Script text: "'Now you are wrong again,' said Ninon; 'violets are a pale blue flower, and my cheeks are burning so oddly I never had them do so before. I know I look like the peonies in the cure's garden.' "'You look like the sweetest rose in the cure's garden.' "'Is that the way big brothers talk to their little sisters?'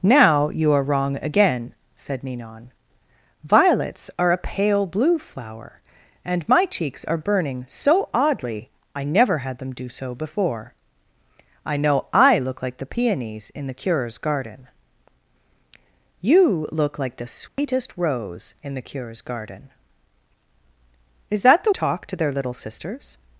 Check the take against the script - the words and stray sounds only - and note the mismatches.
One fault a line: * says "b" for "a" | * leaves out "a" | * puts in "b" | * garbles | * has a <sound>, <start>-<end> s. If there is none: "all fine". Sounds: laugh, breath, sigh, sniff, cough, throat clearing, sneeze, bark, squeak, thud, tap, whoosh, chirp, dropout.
* has a dropout, 17.5-17.6 s
* leaves out "way big brothers"